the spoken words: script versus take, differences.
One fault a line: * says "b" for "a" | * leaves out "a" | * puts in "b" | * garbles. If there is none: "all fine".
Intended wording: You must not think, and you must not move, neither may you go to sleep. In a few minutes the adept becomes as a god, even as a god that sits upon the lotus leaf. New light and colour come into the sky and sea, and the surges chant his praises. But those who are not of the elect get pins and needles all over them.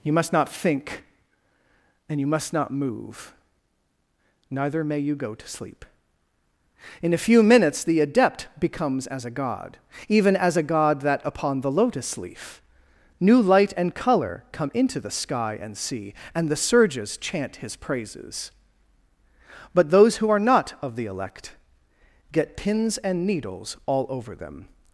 * leaves out "sits"